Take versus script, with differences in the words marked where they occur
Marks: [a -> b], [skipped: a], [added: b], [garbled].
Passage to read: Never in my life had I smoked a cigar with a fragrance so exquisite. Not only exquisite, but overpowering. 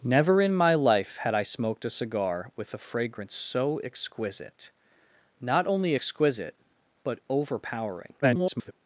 Never in my life had I smoked a cigar with a fragrance so exquisite. Not only exquisite, but overpowering. [garbled]